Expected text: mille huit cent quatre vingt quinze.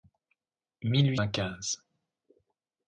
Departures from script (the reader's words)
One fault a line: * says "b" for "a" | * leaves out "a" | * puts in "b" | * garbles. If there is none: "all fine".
* leaves out "cent quatre"